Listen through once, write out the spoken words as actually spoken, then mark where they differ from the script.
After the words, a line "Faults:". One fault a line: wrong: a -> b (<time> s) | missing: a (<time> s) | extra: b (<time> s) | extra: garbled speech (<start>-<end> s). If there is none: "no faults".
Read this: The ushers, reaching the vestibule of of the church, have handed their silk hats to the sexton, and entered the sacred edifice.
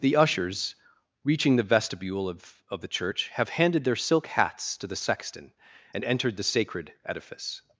The ushers, reaching the vestibule of of the church, have handed their silk hats to the sexton, and entered the sacred edifice.
Faults:
no faults